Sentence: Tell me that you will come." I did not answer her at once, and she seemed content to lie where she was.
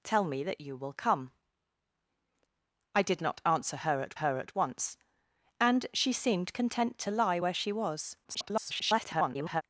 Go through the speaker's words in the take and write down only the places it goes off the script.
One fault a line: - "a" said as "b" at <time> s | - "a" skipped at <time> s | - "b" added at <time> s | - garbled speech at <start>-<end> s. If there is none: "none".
- "her at" added at 4.1 s
- garbled speech at 8.2-9.6 s